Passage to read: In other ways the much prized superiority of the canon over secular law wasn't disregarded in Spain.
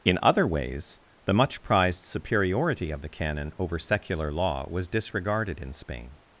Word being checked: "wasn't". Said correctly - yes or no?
no